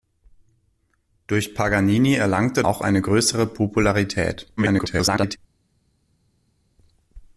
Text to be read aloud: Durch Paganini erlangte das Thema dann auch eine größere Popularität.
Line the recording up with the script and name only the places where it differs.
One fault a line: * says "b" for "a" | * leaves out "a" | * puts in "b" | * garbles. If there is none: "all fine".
* leaves out "das Thema dann"
* garbles